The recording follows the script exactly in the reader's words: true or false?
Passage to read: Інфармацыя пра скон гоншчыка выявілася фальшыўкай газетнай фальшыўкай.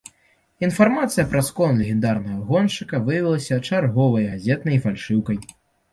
false